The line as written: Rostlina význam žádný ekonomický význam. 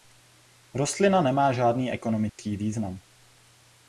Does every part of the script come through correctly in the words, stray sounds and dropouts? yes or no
no